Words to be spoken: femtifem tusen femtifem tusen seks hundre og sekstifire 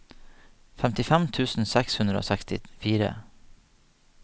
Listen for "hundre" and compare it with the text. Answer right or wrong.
right